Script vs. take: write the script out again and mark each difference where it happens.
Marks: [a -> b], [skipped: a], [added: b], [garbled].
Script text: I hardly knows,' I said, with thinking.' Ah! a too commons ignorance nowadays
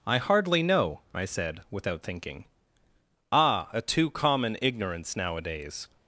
I hardly [knows,' -> know] I said, [with -> without] thinking.' Ah! a too [commons -> common] ignorance nowadays